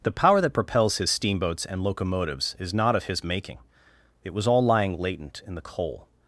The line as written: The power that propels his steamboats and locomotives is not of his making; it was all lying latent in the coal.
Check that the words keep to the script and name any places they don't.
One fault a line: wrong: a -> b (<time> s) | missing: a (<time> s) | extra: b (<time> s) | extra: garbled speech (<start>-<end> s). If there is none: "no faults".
no faults